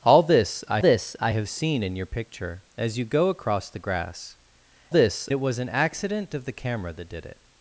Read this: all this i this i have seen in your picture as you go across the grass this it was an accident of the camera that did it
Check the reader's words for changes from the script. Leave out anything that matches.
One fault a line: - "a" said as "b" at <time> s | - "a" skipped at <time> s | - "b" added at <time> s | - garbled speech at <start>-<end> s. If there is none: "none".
none